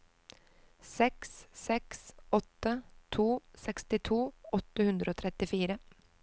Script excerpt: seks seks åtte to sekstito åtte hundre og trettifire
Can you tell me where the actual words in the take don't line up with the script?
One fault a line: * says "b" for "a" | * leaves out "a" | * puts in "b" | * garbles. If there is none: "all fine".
all fine